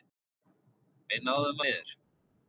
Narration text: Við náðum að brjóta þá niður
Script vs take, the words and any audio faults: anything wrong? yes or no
yes